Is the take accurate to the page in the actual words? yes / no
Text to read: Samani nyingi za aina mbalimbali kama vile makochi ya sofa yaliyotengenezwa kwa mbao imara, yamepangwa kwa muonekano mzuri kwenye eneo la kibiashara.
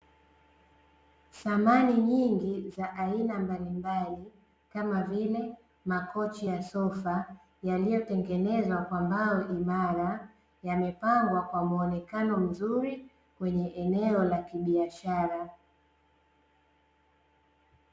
yes